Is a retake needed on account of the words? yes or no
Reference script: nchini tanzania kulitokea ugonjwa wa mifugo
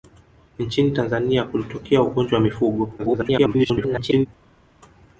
yes